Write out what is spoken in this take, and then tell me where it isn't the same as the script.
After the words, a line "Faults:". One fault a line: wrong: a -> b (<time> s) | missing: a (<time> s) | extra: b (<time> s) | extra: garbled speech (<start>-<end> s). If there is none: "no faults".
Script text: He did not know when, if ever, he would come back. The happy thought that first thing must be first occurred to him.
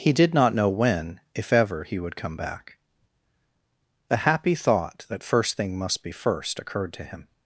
He did not know when, if ever, he would come back. The happy thought that first thing must be first occurred to him.
Faults:
no faults